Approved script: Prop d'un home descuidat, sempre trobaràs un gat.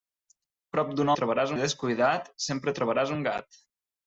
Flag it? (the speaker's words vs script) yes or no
yes